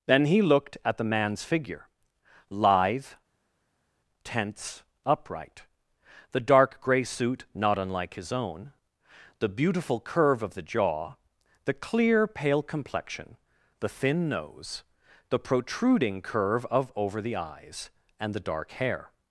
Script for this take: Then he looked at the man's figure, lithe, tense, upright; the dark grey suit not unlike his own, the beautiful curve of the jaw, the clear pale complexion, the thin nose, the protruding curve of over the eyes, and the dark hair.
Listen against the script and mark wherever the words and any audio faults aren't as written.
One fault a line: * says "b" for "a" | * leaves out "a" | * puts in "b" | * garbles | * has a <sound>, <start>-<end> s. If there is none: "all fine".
all fine